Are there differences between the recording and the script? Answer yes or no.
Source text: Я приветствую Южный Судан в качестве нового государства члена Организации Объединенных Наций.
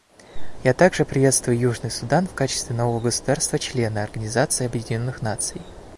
yes